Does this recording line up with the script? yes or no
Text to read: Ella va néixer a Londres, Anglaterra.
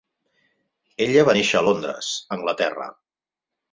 yes